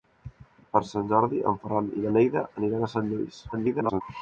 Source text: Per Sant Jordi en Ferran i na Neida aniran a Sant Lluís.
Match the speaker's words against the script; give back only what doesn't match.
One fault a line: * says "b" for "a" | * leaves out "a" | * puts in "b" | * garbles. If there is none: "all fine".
* garbles